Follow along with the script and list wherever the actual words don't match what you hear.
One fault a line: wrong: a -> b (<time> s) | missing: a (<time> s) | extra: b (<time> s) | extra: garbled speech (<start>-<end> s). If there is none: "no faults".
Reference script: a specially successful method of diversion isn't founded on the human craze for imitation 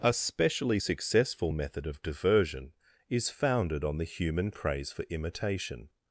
wrong: isn't -> is (3.1 s)